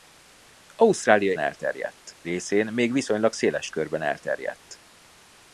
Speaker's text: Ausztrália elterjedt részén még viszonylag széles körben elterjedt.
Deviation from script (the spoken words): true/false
false